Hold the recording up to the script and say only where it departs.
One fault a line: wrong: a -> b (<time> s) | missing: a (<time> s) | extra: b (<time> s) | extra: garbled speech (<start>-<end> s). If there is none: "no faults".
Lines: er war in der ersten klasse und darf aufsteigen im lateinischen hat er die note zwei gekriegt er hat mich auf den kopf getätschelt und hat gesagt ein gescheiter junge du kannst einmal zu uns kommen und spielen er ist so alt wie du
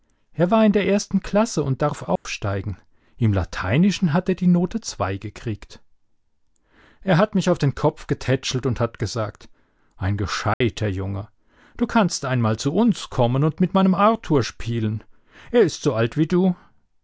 extra: mit meinem arthur (13.6 s)